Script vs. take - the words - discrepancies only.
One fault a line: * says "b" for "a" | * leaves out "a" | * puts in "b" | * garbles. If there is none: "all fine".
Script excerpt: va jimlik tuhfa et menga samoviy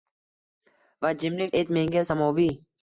* leaves out "tuhfa"